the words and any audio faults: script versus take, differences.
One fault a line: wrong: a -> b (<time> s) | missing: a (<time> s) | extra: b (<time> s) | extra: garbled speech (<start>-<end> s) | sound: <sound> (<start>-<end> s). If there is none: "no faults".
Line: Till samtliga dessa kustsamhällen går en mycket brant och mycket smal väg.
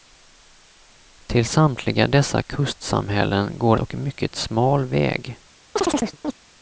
missing: en mycket brant (3.8 s)
sound: chirp (5.8-6.4 s)